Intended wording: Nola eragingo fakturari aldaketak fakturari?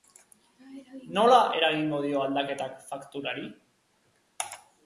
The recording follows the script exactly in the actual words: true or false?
false